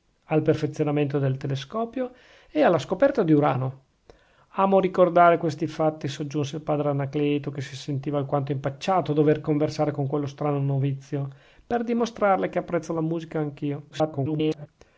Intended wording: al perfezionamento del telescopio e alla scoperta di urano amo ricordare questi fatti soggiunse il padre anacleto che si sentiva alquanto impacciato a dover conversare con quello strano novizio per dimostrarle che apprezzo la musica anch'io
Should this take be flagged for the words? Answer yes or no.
yes